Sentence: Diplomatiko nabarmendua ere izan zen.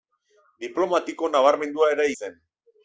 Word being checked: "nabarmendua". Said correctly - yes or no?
yes